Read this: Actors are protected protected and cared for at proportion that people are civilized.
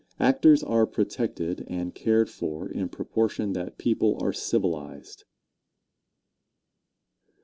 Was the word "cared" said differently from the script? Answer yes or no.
no